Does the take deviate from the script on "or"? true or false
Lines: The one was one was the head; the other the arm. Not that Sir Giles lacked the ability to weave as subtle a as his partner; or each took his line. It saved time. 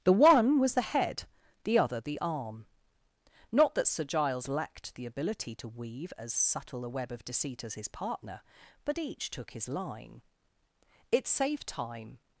true